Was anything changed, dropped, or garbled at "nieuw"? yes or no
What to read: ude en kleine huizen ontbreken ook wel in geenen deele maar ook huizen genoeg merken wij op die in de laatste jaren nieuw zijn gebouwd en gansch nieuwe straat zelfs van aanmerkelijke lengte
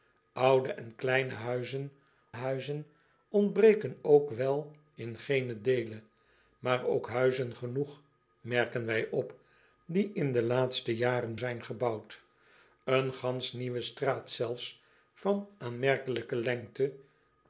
yes